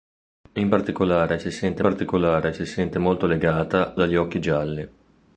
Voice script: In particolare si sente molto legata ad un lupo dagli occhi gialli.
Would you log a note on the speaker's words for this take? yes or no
yes